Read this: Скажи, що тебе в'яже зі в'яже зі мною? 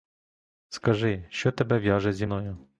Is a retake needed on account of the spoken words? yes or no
yes